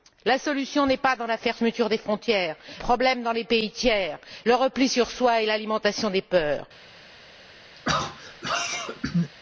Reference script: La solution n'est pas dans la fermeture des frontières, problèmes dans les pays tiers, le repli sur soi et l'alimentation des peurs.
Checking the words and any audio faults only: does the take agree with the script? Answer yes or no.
no